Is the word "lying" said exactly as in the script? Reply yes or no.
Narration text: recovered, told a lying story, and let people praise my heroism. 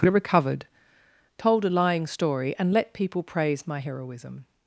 yes